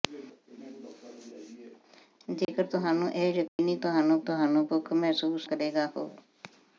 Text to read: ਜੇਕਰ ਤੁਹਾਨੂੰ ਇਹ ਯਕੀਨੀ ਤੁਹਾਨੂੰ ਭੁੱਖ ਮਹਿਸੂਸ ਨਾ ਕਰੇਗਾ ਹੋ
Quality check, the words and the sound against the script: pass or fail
fail